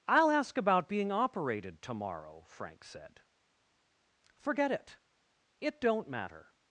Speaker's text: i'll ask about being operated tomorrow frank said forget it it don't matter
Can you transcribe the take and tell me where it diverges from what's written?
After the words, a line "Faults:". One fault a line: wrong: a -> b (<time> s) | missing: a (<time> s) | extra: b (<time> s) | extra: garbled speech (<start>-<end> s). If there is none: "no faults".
i'll ask about being operated tomorrow frank said forget it it don't matter
Faults:
no faults